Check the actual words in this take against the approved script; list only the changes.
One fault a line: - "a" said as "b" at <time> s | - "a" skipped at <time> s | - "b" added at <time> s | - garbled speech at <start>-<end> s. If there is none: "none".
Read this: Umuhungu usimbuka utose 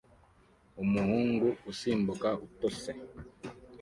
none